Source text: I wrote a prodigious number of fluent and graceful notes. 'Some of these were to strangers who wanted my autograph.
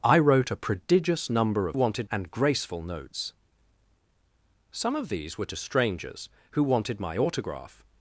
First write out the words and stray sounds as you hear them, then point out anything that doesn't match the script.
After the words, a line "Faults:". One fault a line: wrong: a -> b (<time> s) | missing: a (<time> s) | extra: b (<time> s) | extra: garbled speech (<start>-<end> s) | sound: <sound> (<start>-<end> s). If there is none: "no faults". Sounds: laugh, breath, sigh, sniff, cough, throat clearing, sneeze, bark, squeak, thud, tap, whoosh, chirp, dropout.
I wrote a prodigious number of wanted and graceful notes. 'Some of these were to strangers who wanted my autograph.
Faults:
wrong: fluent -> wanted (1.7 s)